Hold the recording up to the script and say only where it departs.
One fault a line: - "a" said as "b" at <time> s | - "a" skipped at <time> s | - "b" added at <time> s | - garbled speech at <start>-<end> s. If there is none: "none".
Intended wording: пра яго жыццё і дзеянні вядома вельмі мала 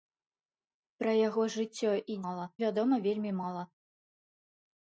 - "дзеянні" said as "мала" at 2.3 s